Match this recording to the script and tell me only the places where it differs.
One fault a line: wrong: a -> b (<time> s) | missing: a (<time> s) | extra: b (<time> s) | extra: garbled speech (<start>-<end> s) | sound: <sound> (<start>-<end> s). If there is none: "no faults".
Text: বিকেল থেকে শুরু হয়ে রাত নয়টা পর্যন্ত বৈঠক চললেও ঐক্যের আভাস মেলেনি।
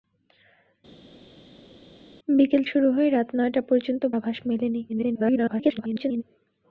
missing: থেকে (2.6 s)
missing: বৈঠক চললেও ঐক্যের (4.0 s)
extra: garbled speech (4.9-6.2 s)